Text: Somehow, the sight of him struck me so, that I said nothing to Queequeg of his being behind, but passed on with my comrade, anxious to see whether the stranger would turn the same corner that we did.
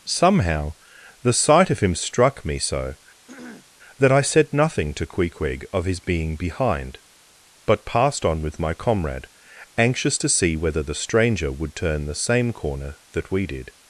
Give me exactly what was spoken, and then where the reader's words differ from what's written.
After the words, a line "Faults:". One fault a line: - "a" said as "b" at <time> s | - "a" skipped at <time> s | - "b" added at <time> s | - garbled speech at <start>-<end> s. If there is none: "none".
Somehow, the sight of him struck me so, that I said nothing to Queequeg of his being behind, but passed on with my comrade, anxious to see whether the stranger would turn the same corner that we did.
Faults:
none